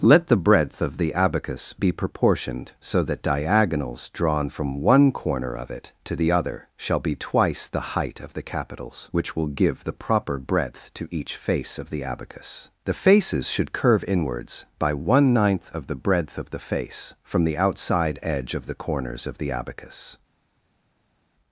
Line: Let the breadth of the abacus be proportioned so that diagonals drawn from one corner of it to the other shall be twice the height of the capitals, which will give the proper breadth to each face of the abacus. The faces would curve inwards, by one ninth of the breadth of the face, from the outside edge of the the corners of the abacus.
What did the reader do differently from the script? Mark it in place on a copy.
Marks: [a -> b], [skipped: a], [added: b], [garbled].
Let the breadth of the abacus be proportioned so that diagonals drawn from one corner of it to the other shall be twice the height of the capitals, which will give the proper breadth to each face of the abacus. The faces [would -> should] curve inwards, by one ninth of the breadth of the face, from the outside edge of the [skipped: the] corners of the abacus.